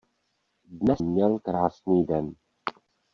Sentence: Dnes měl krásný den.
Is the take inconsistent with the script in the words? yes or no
no